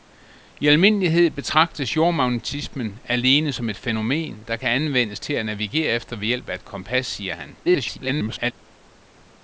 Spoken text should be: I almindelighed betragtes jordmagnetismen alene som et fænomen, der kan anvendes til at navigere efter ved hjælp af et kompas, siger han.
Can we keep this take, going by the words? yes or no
no